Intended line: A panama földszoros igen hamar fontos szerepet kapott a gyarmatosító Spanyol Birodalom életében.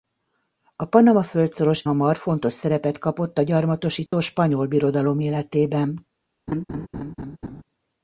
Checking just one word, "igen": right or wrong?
wrong